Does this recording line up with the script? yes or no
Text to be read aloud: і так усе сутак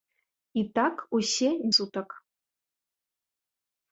yes